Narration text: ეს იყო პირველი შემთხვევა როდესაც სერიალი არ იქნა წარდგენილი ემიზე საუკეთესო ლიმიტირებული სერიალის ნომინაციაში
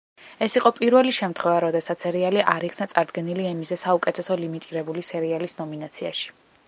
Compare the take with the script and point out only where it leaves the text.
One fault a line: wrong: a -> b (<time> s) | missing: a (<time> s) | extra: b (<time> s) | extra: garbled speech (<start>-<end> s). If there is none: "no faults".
no faults